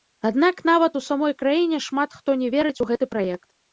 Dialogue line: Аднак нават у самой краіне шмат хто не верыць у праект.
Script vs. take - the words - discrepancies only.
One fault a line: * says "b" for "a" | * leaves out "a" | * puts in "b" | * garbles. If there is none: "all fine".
* puts in "гэты"